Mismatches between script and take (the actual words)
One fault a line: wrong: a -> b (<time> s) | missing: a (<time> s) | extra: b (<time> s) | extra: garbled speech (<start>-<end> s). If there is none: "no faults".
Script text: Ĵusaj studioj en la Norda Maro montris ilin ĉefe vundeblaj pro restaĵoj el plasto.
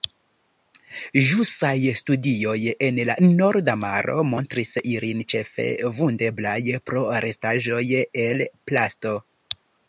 no faults